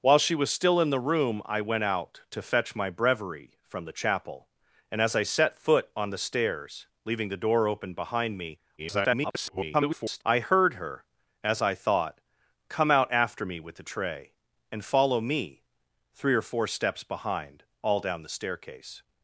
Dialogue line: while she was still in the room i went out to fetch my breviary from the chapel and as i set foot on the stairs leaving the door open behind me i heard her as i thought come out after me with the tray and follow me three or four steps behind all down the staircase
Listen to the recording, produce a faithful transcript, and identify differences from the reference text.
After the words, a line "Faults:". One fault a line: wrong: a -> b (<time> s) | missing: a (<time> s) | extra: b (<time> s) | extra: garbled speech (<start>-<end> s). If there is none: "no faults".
while she was still in the room i went out to fetch my breviary from the chapel and as i set foot on the stairs leaving the door open behind me [garbled] i heard her as i thought come out after me with the tray and follow me three or four steps behind all down the staircase
Faults:
extra: garbled speech (8.8-10.2 s)